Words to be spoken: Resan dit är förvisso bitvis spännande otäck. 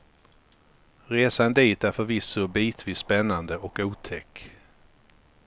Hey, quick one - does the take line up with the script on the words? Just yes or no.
no